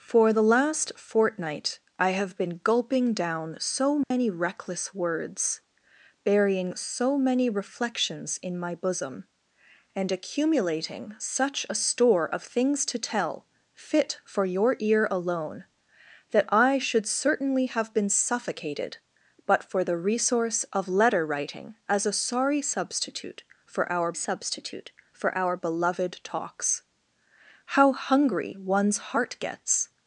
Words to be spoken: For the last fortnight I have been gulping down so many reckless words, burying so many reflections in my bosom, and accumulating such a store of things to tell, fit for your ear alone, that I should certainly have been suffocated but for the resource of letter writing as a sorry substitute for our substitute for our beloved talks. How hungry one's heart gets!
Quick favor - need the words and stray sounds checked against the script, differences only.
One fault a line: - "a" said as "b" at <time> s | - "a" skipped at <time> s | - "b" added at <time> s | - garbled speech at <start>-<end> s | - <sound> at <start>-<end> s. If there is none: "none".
- dropout at 4.0-4.1 s